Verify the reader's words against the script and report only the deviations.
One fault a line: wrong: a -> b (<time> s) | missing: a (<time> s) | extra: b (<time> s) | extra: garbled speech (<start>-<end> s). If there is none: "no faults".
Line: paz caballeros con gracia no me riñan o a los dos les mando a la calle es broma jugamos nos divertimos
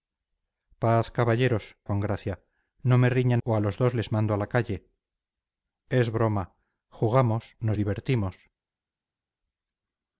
no faults